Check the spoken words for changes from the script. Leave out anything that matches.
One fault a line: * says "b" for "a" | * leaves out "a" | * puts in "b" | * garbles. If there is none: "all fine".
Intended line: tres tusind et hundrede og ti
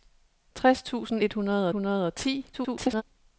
* puts in "hundrede"
* garbles